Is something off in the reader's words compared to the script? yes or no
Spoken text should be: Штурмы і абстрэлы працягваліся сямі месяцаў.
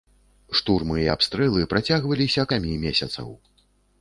no